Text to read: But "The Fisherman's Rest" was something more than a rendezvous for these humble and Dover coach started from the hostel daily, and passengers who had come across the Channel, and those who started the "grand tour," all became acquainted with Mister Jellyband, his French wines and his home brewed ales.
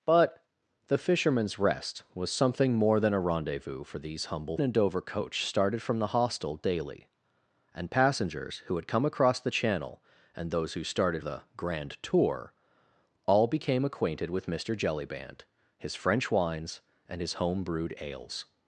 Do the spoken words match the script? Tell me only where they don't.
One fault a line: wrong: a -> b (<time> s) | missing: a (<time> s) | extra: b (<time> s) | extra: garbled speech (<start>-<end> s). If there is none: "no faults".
no faults